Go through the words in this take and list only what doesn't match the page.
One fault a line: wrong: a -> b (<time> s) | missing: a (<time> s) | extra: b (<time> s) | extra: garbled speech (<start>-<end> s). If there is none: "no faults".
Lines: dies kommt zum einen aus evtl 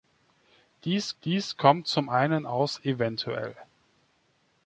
extra: dies (1.2 s)